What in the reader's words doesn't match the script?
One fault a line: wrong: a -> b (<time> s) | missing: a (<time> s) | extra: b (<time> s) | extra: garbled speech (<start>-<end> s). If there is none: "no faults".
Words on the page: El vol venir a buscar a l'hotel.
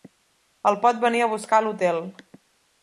wrong: vol -> pot (0.8 s)